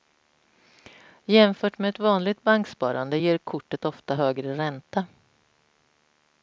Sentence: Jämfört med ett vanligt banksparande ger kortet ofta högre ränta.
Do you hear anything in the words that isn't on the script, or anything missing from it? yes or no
no